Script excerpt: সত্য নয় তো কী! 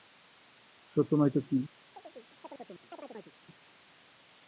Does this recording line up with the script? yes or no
yes